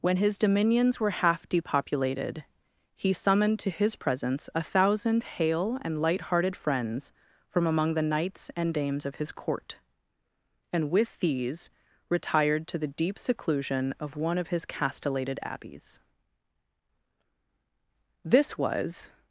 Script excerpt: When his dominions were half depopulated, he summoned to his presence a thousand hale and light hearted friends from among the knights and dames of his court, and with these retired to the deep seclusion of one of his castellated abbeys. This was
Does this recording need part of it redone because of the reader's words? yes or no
no